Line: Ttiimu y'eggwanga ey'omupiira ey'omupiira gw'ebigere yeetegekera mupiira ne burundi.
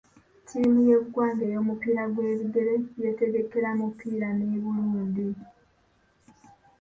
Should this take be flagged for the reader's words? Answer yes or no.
yes